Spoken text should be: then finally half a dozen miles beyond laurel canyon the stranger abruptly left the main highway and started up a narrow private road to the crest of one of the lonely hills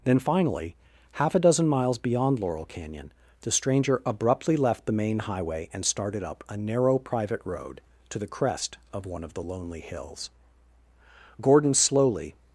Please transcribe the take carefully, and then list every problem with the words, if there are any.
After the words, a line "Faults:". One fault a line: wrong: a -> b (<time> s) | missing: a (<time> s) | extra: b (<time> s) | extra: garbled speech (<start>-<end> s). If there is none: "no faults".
then finally half a dozen miles beyond laurel canyon the stranger abruptly left the main highway and started up a narrow private road to the crest of one of the lonely hills gordon slowly
Faults:
extra: gordon slowly (11.4 s)